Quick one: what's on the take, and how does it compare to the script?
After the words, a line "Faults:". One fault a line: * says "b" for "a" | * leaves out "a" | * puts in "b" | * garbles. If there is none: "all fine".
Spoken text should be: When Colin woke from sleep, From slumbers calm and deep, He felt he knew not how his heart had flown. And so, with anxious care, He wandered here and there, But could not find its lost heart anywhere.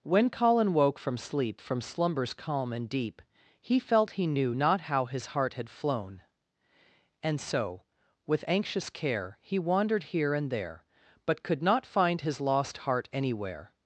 When Colin woke from sleep, From slumbers calm and deep, He felt he knew not how his heart had flown. And so, with anxious care, He wandered here and there, But could not find his lost heart anywhere.
Faults:
* says "his" for "its"